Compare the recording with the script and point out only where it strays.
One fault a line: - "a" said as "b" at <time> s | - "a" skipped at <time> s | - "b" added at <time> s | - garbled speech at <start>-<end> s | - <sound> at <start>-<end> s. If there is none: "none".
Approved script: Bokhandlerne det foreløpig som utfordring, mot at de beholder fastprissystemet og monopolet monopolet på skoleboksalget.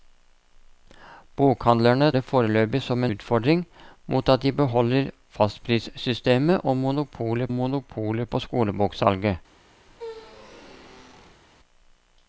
- squeak at 9.9-11.4 s